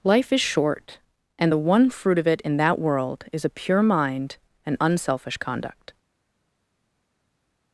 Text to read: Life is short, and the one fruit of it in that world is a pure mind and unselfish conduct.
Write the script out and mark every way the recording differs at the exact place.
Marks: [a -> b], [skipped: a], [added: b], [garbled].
Life is short, and the one fruit of it in that world is a pure mind and unselfish conduct.